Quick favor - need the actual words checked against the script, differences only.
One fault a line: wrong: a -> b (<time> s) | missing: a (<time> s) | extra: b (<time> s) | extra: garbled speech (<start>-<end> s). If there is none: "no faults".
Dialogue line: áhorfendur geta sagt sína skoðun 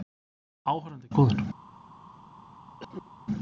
missing: geta sagt sína (1.1 s)